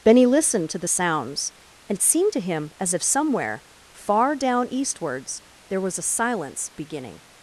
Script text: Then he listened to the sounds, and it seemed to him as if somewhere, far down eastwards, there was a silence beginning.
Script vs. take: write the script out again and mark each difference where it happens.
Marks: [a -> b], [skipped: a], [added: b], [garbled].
[Then he -> Benny] listened to the sounds, and it seemed to him as if somewhere, far down eastwards, there was a silence beginning.